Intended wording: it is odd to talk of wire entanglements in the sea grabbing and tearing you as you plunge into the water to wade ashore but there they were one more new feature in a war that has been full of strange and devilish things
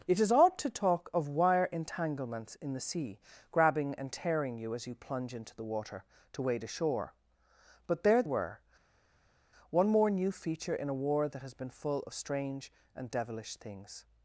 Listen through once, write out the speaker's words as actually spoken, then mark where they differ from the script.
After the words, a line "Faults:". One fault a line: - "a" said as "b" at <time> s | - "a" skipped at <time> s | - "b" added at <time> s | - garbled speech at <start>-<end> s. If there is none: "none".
it is odd to talk of wire entanglements in the sea grabbing and tearing you as you plunge into the water to wade ashore but there were one more new feature in a war that has been full of strange and devilish things
Faults:
- "they" skipped at 8.2 s